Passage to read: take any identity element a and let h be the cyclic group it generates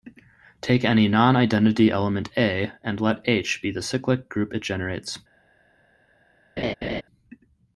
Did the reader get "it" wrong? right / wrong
right